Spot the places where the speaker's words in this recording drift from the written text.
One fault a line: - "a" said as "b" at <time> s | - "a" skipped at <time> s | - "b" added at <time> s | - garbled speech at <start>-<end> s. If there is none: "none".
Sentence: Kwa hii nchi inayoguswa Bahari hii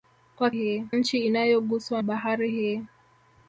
none